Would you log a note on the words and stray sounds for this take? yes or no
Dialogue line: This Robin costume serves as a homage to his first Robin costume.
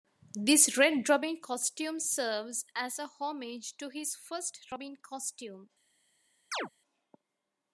yes